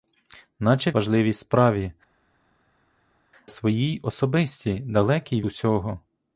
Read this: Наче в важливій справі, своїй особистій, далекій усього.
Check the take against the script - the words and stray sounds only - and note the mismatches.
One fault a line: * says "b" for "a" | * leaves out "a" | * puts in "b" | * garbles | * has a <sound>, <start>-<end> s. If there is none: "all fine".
all fine